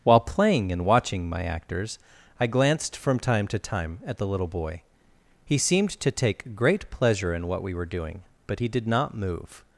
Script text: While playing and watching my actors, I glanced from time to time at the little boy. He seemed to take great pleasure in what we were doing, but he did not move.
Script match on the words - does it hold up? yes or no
yes